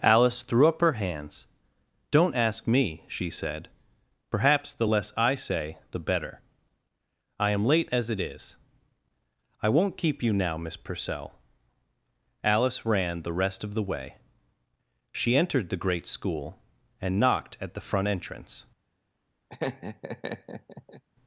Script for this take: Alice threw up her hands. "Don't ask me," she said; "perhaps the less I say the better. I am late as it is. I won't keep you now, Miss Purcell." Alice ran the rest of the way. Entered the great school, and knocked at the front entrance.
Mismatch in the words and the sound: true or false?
true